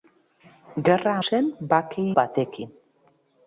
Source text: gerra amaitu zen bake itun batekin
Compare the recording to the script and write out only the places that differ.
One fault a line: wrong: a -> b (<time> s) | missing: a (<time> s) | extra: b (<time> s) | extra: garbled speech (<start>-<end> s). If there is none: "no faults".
missing: amaitu (1.1 s)
missing: itun (2.0 s)